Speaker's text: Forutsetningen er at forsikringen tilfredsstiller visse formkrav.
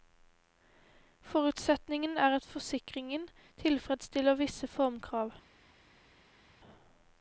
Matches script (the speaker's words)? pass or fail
pass